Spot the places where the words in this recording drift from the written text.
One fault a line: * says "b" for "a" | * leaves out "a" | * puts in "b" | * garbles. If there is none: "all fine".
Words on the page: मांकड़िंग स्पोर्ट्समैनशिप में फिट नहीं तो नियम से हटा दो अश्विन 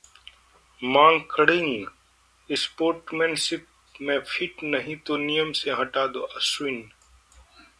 all fine